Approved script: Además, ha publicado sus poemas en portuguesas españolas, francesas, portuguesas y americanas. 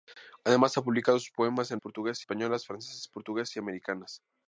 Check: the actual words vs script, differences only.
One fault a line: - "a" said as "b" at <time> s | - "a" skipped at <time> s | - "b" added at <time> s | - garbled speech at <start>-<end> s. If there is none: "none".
none